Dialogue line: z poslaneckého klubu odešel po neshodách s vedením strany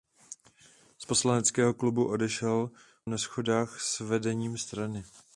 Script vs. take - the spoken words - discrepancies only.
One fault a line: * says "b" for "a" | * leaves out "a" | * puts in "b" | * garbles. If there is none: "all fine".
* leaves out "po"